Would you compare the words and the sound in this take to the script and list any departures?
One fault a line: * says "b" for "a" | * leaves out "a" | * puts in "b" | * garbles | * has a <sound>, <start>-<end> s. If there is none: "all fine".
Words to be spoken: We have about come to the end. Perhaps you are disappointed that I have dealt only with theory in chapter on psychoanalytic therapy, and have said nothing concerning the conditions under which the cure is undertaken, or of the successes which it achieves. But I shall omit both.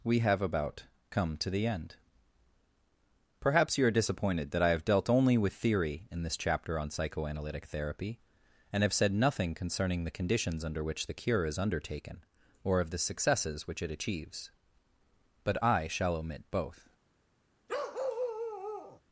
* puts in "this"
* has a bark, 17.7-19.0 s